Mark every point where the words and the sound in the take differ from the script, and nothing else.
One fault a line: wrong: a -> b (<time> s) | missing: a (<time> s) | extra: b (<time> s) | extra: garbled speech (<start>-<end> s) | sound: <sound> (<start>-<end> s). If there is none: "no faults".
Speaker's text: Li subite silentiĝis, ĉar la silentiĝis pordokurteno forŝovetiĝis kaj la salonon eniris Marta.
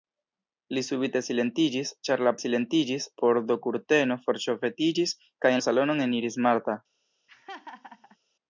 sound: laugh (7.3-8.2 s)